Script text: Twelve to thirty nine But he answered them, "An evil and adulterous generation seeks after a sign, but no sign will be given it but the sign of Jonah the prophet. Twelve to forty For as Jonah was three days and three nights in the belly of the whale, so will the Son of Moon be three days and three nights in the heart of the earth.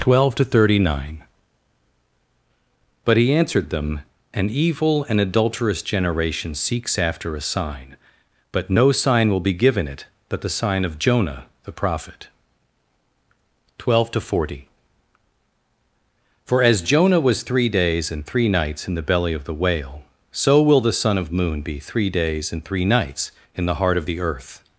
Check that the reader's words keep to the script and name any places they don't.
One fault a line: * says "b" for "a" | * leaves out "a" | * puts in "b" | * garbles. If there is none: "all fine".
all fine